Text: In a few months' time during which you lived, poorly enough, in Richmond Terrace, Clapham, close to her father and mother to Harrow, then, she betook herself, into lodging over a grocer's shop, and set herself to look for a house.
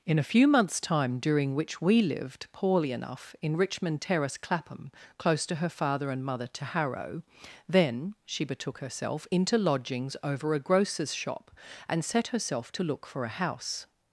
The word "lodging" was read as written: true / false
false